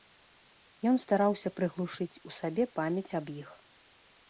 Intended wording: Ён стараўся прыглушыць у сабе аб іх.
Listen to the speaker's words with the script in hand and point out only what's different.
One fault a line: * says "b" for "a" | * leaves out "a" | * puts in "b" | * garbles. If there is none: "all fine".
* puts in "памяць"